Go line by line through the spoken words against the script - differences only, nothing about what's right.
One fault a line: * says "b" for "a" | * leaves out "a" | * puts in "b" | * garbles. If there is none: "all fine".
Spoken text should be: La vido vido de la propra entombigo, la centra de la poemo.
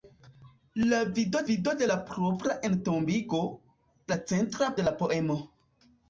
all fine